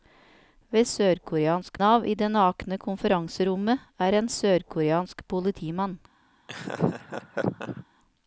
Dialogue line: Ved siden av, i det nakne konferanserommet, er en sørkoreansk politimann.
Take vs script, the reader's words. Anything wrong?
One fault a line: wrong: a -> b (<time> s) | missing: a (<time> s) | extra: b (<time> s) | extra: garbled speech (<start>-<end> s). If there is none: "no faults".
wrong: siden -> sørkoreansk (0.8 s)